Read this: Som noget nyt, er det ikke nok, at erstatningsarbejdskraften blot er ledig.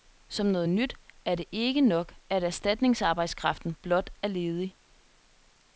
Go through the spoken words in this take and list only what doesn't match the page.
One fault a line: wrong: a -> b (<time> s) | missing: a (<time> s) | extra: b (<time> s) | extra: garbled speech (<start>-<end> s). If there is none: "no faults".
no faults